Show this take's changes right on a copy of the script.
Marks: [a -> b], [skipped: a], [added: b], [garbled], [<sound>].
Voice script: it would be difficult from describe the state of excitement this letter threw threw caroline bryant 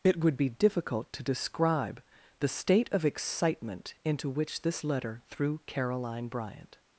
it would be difficult [from -> to] describe the state of excitement [added: into which] this letter threw [skipped: threw] caroline bryant